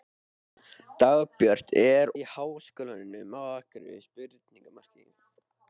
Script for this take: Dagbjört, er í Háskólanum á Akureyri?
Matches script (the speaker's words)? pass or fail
pass